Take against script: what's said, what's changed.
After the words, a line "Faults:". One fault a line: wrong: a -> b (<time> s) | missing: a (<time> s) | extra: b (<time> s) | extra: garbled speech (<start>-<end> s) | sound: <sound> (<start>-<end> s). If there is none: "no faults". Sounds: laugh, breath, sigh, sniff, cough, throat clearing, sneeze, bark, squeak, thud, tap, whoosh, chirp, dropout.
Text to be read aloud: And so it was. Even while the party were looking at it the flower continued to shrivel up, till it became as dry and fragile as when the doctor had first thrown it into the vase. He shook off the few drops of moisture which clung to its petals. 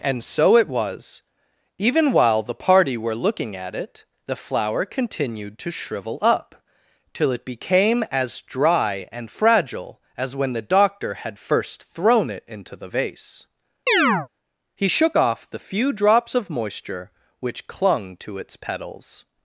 And so it was. Even while the party were looking at it the flower continued to shrivel up, till it became as dry and fragile as when the doctor had first thrown it into the vase. He shook off the few drops of moisture which clung to its petals.
Faults:
sound: chirp (13.9-14.3 s)